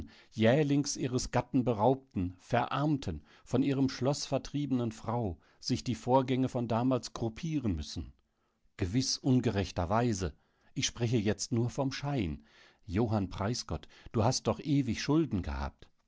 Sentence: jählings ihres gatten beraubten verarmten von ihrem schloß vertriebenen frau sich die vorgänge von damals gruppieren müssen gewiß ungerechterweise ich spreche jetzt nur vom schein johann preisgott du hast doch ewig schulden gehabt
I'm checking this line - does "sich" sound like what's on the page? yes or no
yes